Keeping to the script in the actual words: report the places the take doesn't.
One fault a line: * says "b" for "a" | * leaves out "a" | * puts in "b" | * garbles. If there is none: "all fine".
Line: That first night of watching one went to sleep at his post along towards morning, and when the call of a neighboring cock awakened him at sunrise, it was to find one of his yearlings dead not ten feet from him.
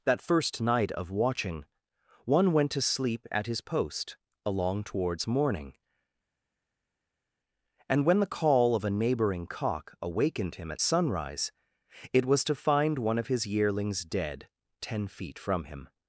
* leaves out "not"